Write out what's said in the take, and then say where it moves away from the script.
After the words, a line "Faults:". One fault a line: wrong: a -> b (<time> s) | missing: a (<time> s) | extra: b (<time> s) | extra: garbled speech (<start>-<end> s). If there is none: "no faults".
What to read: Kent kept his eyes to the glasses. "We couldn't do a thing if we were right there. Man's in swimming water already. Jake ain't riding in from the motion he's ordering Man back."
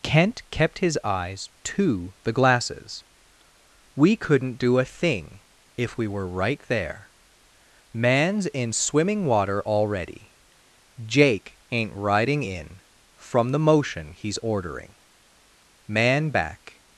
Kent kept his eyes to the glasses. "We couldn't do a thing if we were right there. Man's in swimming water already. Jake ain't riding in from the motion he's ordering Man back."
Faults:
no faults